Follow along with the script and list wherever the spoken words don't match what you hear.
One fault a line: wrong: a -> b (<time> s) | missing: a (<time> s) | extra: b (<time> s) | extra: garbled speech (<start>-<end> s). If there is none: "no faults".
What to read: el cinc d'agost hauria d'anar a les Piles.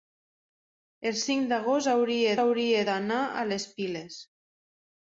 extra: hauria (2.4 s)